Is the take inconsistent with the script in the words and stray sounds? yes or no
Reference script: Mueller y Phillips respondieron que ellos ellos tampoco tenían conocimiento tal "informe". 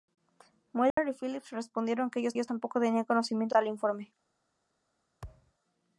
yes